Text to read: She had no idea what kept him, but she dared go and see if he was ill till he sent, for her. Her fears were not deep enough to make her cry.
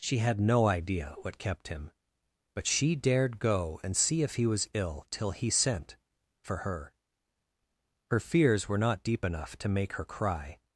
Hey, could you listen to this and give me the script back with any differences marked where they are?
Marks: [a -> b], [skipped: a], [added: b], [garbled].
She had no idea what kept him, but she dared go and see if he was ill till he sent, for her. Her fears were not deep enough to make her cry.